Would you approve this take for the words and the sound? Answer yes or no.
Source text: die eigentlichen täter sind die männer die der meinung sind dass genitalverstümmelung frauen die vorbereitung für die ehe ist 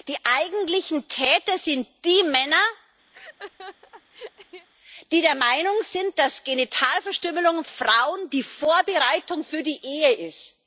no